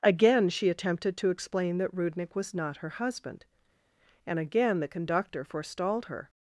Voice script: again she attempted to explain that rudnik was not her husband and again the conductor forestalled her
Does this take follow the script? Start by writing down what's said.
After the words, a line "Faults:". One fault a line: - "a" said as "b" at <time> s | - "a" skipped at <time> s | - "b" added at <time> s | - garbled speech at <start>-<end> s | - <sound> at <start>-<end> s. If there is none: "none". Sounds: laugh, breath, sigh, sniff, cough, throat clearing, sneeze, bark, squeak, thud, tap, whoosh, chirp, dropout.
again she attempted to explain that rudnik was not her husband and again the conductor forestalled her
Faults:
none